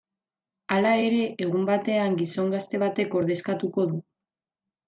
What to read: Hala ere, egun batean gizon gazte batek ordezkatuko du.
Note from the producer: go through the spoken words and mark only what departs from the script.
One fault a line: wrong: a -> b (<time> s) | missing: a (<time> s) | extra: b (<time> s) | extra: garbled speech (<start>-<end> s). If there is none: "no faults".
no faults